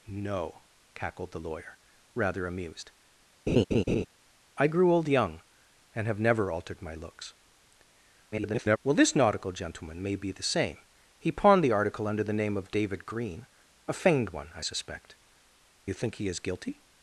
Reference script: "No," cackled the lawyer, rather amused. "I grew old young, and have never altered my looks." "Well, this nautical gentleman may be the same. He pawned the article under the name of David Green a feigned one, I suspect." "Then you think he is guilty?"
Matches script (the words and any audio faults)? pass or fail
fail